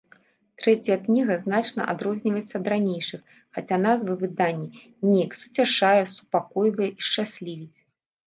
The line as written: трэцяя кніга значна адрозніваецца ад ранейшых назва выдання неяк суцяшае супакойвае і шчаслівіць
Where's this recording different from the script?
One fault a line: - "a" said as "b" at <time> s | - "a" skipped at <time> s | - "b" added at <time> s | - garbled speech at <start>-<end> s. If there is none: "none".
- "хаця" added at 3.6 s